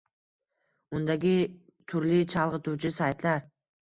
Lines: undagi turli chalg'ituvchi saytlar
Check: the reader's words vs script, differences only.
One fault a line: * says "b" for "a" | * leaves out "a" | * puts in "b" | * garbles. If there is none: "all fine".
all fine